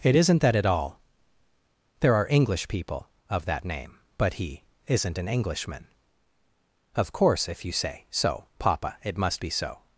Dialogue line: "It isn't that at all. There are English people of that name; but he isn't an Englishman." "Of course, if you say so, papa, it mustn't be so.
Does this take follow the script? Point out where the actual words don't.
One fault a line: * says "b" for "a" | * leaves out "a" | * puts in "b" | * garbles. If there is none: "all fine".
* says "must" for "mustn't"